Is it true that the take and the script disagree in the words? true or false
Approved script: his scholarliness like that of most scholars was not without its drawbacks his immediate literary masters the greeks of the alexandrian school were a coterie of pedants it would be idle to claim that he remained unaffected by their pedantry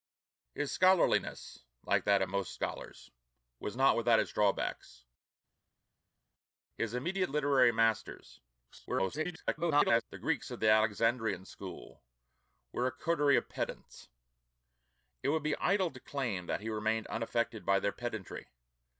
true